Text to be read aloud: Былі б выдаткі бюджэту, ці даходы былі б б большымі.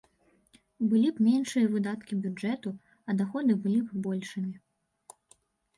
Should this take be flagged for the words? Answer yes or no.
yes